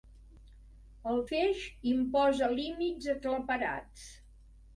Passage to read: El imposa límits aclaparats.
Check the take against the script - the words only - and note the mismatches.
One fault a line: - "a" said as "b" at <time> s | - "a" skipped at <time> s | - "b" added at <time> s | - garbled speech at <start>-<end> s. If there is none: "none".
- "feix" added at 1.3 s